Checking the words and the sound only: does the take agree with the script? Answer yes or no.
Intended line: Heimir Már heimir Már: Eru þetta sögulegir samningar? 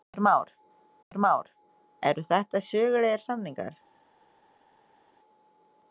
yes